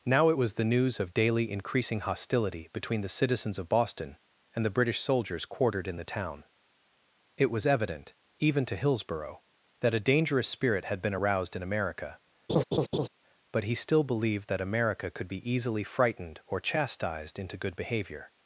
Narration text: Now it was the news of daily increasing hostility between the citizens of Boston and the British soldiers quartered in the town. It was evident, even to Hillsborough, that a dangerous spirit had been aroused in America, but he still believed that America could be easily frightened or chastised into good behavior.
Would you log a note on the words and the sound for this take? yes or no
yes